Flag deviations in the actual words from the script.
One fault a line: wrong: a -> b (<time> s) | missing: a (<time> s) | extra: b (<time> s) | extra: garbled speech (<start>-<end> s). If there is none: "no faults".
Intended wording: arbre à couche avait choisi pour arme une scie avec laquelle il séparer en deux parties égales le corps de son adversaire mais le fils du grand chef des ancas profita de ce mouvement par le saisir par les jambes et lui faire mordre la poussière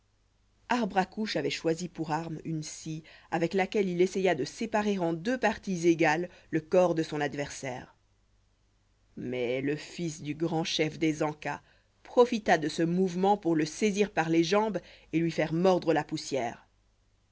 extra: essaya de (4.0 s)
wrong: par -> pour (13.4 s)